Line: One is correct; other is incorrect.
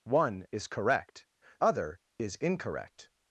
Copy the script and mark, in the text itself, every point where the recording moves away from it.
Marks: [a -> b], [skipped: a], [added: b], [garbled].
One is correct; other is incorrect.